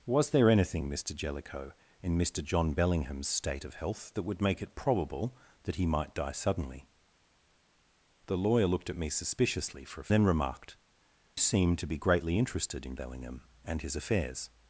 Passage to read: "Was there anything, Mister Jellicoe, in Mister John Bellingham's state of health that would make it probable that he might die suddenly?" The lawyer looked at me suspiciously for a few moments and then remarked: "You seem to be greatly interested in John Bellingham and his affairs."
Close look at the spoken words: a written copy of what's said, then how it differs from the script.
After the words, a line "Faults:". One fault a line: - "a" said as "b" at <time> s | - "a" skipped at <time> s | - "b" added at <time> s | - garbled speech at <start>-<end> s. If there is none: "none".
"Was there anything, Mister Jellicoe, in Mister John Bellingham's state of health that would make it probable that he might die suddenly?" The lawyer looked at me suspiciously for a then remarked: "Seem to be greatly interested in Bellingham and his affairs."
Faults:
- "few moments and" skipped at 10.1 s
- "You" skipped at 10.8 s
- "John" skipped at 13.0 s